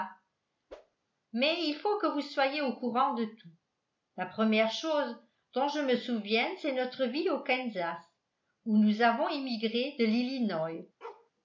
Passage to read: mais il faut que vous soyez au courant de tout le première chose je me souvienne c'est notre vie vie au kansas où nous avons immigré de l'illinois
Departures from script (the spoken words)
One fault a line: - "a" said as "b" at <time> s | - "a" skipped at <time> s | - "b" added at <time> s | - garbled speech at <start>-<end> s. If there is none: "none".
- "le" said as "la" at 4.2 s
- "dont" added at 5.5 s
- "vie" skipped at 7.3 s